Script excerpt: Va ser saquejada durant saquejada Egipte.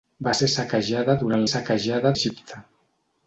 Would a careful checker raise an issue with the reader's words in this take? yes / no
no